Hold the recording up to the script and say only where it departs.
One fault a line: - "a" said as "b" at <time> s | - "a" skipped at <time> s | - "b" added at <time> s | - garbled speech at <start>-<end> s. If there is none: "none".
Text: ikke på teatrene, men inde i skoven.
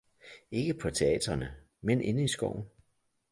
none